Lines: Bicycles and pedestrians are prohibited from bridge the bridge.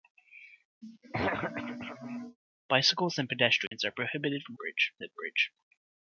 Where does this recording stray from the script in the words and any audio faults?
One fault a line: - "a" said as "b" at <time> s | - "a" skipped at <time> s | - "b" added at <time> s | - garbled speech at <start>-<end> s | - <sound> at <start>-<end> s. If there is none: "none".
- throat clearing at 0.8-2.4 s
- dropout at 3.7-3.7 s